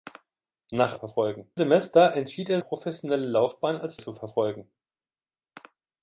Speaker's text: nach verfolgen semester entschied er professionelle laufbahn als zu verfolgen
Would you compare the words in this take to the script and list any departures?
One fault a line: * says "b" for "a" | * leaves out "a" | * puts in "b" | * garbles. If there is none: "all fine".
all fine